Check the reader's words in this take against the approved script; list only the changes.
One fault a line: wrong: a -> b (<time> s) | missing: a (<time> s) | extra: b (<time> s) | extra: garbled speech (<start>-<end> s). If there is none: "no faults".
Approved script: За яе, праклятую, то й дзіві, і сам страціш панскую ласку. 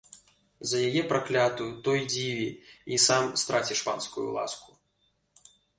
no faults